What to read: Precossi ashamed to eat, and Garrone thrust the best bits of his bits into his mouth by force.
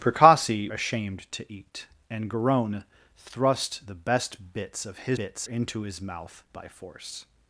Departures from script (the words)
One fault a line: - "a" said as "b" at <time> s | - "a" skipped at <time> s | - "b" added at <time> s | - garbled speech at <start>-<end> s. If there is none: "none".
none